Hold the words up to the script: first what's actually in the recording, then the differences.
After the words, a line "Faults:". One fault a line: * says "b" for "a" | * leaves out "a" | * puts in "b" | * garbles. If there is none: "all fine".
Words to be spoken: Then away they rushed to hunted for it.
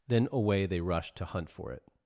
Then away they rushed to hunt for it.
Faults:
* says "hunt" for "hunted"